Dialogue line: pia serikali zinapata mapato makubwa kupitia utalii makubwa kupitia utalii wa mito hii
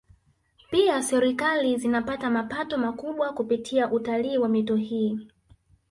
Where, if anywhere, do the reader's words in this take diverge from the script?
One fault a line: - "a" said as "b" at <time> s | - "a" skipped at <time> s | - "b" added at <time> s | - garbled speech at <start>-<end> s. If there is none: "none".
- "makubwa kupitia utalii" skipped at 4.4 s